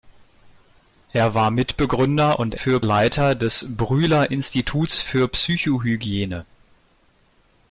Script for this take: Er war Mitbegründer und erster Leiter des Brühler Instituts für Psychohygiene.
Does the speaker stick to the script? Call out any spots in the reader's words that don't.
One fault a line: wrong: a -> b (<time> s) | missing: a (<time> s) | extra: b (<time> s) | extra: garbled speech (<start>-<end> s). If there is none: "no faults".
wrong: erster -> für (2.5 s)